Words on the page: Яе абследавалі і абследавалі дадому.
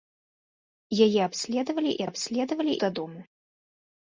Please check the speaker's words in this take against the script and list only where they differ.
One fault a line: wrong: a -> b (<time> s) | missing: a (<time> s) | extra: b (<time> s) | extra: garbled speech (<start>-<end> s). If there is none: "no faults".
no faults